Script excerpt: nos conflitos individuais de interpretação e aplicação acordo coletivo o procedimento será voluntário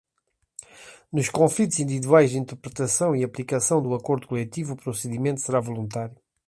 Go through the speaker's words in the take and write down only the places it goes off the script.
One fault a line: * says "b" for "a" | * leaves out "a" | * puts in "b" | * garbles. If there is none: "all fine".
* puts in "do"